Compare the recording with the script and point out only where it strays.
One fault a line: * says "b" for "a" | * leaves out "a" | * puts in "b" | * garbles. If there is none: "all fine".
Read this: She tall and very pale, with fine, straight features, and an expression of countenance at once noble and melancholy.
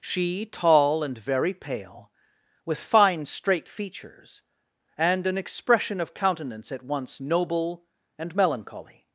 all fine